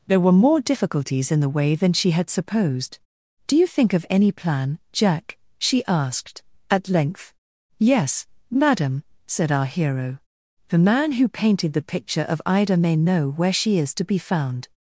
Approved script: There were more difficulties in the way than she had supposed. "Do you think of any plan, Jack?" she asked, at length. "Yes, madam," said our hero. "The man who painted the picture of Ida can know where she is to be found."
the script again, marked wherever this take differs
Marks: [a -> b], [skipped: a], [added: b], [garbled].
There were more difficulties in the way than she had supposed. "Do you think of any plan, Jack?" she asked, at length. "Yes, madam," said our hero. "The man who painted the picture of Ida [can -> may] know where she is to be found."